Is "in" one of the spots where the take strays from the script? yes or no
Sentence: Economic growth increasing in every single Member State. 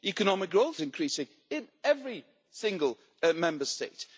no